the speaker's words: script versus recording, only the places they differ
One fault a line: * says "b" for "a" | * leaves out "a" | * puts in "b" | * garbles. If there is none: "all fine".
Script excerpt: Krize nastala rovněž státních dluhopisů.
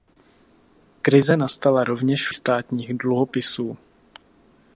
all fine